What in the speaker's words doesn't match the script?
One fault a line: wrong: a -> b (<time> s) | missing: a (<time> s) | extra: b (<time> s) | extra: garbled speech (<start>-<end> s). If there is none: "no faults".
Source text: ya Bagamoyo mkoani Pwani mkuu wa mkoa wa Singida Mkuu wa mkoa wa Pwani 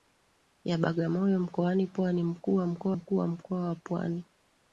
missing: wa Singida (2.9 s)